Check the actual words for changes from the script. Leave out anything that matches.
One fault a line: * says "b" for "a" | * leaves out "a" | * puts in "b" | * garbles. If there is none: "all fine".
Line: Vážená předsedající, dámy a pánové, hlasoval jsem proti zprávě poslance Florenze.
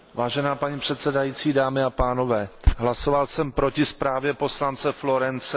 * puts in "paní"